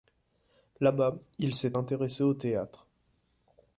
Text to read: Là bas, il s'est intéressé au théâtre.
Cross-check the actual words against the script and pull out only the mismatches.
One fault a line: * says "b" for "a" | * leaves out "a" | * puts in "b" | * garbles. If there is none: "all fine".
all fine